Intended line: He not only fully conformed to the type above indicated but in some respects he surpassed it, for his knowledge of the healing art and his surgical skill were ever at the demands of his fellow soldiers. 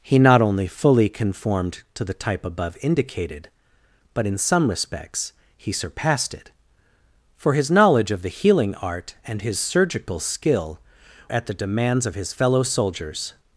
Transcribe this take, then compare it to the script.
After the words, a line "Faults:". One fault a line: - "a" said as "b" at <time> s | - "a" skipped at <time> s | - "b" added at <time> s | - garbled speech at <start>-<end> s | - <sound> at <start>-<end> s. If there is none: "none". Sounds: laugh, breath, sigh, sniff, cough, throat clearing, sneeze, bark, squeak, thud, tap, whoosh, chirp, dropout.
He not only fully conformed to the type above indicated but in some respects he surpassed it, for his knowledge of the healing art and his surgical skill at the demands of his fellow soldiers.
Faults:
- "were ever" skipped at 10.8 s